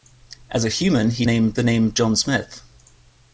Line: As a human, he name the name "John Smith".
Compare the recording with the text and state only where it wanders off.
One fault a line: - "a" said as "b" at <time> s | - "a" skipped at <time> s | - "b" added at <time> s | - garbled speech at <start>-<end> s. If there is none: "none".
none